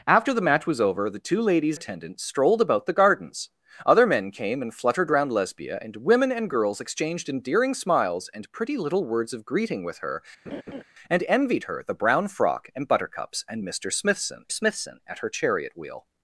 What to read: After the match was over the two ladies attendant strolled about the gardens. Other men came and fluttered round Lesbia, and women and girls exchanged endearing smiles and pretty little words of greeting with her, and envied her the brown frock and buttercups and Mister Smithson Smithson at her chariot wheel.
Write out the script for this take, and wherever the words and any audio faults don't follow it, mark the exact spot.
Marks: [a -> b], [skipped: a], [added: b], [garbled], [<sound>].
After the match was over the two ladies attendant strolled about the gardens. Other men came and fluttered round Lesbia, and women and girls exchanged endearing smiles and pretty little words of greeting with her, [laugh] and envied her the brown frock and buttercups and Mister Smithson Smithson at her chariot wheel.